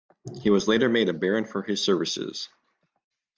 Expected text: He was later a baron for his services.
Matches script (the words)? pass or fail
fail